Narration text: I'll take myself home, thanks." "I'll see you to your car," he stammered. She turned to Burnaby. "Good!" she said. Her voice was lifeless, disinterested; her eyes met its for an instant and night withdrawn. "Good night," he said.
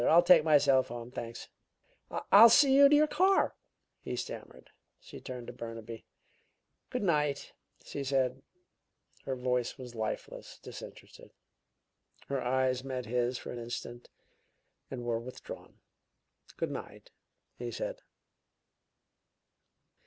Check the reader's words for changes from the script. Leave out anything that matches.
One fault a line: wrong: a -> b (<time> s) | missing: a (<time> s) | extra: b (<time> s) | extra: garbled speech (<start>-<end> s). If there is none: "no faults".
extra: night (7.0 s)
wrong: its -> his (13.1 s)
wrong: night -> were (15.0 s)